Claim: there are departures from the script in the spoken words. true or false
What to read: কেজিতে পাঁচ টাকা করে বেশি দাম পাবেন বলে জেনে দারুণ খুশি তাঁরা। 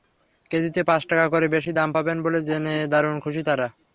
false